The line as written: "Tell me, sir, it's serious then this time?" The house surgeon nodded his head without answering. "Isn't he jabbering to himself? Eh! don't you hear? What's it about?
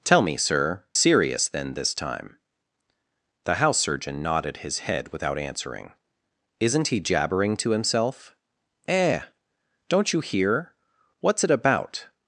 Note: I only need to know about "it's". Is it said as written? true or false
false